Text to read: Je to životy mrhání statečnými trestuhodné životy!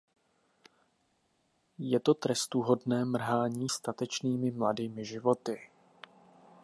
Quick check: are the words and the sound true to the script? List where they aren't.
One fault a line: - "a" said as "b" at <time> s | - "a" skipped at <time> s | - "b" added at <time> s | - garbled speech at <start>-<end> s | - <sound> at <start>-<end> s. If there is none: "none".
- "životy" said as "trestuhodné" at 2.1 s
- "trestuhodné" said as "mladými" at 4.5 s